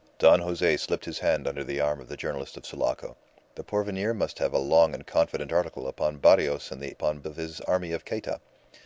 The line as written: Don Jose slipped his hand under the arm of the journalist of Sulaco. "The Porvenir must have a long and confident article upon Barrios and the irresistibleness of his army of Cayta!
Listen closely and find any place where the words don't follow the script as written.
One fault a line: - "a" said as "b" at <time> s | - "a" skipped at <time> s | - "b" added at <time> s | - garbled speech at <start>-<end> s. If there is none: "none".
- "irresistibleness" said as "upon" at 6.9 s